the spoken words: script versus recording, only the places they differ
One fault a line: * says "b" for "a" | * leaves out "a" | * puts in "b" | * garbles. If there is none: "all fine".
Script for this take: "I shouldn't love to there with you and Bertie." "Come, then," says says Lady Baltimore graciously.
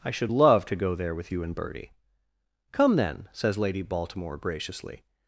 * says "should" for "shouldn't"
* puts in "go"
* leaves out "says"